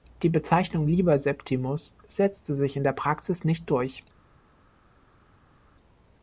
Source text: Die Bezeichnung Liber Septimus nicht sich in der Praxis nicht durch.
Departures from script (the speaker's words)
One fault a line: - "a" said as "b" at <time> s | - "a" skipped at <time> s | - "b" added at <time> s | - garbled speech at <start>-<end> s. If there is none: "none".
- "nicht" said as "setzte" at 2.1 s